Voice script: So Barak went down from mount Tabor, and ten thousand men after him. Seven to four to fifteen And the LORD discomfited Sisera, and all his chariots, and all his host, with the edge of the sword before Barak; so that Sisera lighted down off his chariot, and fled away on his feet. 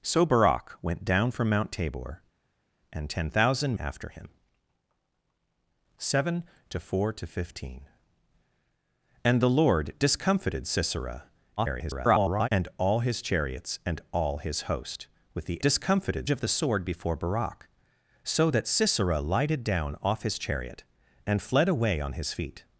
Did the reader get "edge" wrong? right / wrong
wrong